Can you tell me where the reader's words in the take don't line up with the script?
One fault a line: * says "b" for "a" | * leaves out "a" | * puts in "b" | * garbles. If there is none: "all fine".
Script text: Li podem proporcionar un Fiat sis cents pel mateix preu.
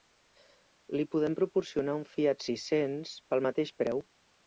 all fine